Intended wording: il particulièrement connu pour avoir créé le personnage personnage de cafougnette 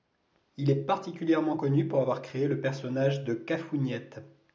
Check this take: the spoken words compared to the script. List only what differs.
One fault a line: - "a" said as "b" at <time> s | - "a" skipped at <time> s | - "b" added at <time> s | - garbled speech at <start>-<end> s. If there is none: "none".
- "est" added at 0.7 s
- "personnage" skipped at 3.3 s